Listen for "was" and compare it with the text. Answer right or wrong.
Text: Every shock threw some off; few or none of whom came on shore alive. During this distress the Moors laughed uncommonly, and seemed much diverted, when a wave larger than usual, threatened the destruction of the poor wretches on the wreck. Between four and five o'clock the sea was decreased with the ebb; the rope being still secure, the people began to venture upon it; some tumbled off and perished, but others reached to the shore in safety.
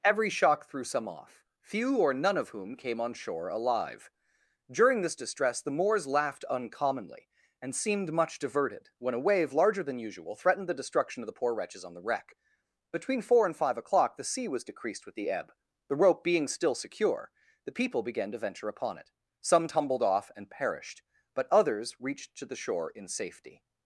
right